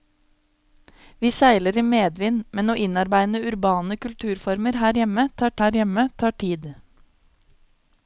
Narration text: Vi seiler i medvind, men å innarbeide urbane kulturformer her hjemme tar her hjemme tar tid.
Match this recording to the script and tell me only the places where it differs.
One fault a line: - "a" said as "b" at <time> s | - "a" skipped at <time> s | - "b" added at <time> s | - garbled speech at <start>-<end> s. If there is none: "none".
none